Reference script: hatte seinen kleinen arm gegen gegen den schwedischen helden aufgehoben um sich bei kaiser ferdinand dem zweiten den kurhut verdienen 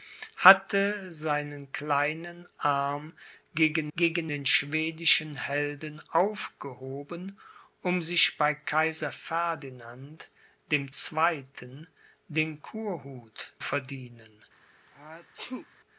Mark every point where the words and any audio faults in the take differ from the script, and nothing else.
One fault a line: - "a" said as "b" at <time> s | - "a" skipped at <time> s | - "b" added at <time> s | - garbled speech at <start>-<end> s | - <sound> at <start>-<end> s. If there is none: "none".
- sneeze at 14.9-15.7 s